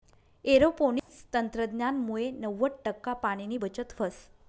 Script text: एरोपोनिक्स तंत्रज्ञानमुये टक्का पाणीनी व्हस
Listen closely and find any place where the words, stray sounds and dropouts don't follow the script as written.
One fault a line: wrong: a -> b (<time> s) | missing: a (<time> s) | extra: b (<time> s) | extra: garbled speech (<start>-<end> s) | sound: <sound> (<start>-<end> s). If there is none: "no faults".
sound: dropout (1.0-1.1 s)
extra: नव्वद (2.4 s)
extra: बचत (3.6 s)